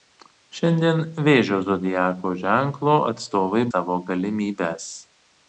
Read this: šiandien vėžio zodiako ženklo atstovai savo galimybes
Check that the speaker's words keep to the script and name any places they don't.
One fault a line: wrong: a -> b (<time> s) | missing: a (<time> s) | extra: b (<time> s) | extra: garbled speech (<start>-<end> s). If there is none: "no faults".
no faults